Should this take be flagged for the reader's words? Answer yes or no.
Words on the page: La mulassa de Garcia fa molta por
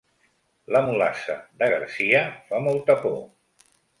no